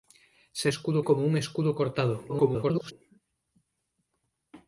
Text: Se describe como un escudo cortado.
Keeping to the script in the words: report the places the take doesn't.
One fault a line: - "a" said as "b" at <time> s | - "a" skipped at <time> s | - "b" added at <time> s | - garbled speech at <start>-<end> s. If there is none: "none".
- "describe" said as "escudo" at 0.7 s
- garbled speech at 2.3-2.9 s